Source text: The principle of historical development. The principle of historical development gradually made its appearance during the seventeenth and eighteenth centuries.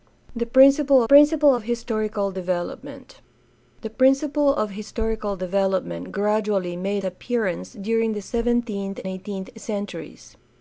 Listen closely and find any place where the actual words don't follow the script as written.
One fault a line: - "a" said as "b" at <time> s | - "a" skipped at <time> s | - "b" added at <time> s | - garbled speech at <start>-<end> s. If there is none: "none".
- "principle" added at 1.0 s
- "its" skipped at 7.0 s
- "and" skipped at 9.0 s